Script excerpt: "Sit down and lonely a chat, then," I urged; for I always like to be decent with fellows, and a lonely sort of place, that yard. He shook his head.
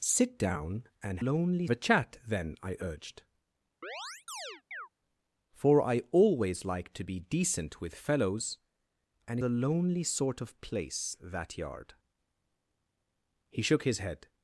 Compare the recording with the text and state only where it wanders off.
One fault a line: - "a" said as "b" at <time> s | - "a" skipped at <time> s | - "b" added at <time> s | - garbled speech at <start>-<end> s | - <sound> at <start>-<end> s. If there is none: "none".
- chirp at 3.8-4.9 s